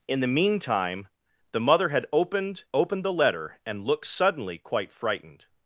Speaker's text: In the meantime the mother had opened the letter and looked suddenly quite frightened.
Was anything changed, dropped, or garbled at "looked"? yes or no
no